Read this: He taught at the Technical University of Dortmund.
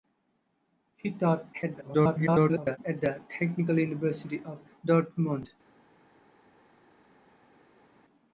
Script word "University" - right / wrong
right